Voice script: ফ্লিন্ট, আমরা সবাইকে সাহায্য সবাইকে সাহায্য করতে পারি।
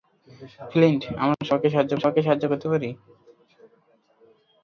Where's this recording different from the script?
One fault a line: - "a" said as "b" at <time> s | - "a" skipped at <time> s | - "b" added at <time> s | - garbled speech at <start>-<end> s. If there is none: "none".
none